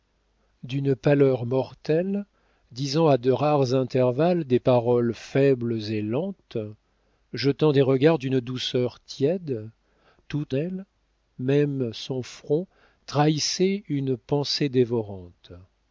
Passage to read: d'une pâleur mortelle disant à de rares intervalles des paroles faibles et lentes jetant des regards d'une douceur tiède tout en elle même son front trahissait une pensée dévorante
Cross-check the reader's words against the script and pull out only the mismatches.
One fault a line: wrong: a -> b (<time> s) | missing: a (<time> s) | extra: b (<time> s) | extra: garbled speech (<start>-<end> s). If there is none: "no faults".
missing: en (10.6 s)